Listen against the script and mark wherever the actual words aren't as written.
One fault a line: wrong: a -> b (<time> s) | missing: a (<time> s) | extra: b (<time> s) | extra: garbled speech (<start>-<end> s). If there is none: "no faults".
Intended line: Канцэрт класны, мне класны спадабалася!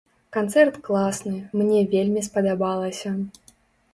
wrong: класны -> вельмі (1.9 s)